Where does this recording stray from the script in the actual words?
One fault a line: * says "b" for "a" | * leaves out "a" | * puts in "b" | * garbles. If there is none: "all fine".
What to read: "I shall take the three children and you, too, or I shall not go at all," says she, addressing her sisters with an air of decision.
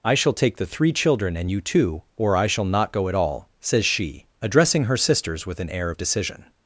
all fine